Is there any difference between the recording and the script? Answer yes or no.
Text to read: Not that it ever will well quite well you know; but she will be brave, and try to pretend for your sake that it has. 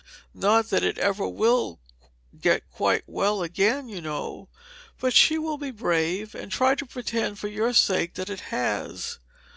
yes